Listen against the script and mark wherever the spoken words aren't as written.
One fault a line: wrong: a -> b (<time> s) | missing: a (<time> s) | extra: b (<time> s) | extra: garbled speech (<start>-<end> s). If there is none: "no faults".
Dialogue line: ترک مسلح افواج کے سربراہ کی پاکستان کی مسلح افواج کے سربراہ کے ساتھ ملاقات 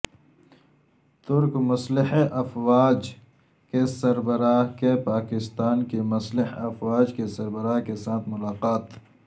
no faults